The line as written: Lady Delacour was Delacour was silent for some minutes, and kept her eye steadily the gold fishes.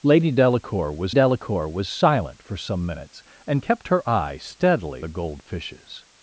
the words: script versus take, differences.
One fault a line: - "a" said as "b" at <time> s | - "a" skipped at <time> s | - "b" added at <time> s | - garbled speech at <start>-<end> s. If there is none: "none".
none